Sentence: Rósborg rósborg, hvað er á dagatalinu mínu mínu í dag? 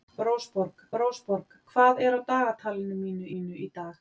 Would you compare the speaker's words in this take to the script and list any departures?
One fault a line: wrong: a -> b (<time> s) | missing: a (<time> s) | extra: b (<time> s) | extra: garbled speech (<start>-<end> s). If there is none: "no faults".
no faults